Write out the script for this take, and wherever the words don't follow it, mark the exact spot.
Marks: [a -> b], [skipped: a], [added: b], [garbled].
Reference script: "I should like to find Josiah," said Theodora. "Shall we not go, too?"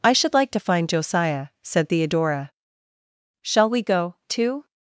"I should like to find Josiah," said Theodora. "Shall we [skipped: not] go, too?"